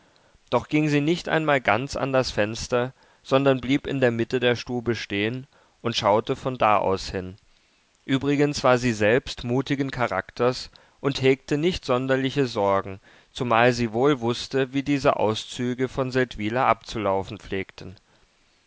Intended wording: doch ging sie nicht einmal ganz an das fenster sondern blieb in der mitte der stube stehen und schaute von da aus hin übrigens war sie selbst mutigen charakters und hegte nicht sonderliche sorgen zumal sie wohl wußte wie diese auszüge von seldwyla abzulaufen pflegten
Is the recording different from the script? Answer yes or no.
no